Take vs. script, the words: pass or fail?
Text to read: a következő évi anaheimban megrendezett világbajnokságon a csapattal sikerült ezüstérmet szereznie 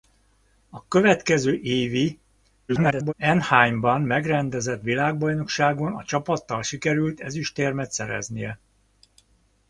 fail